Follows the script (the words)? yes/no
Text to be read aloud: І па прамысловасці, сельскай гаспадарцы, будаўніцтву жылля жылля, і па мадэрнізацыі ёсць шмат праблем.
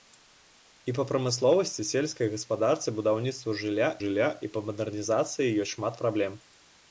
yes